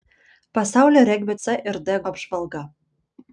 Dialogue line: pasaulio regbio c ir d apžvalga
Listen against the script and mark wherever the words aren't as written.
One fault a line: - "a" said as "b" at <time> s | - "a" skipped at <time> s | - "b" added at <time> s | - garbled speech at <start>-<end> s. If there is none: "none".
none